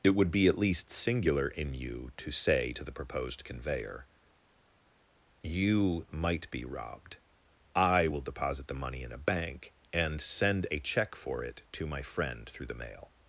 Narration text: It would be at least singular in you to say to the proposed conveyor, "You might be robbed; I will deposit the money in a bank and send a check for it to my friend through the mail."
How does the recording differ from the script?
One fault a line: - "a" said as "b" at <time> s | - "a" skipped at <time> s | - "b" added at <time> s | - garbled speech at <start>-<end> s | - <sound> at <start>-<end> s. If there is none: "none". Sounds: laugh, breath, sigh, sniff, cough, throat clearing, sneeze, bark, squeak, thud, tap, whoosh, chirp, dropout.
none